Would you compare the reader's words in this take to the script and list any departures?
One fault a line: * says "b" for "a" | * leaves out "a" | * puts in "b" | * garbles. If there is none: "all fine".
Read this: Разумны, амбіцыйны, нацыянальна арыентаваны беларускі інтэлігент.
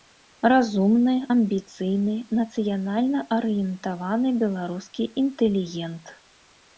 all fine